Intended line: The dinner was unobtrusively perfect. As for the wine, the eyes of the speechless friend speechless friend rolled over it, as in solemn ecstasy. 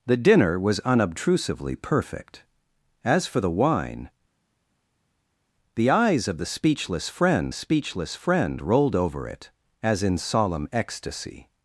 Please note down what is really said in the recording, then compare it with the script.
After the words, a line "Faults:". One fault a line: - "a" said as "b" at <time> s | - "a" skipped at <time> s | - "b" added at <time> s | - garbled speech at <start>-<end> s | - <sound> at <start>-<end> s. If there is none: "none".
The dinner was unobtrusively perfect. As for the wine, the eyes of the speechless friend speechless friend rolled over it, as in solemn ecstasy.
Faults:
none